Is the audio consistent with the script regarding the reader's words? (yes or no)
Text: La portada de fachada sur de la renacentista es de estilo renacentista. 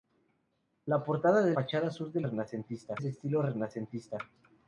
yes